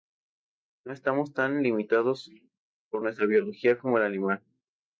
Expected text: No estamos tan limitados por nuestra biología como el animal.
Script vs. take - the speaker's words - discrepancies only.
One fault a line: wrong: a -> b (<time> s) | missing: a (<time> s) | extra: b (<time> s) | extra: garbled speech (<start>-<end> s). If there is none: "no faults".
no faults